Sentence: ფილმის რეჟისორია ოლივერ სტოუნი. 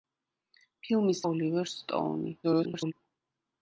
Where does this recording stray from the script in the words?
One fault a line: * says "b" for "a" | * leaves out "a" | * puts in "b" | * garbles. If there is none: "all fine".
* leaves out "რეჟისორია"
* garbles